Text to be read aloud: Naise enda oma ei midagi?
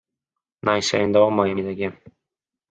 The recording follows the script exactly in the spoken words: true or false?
true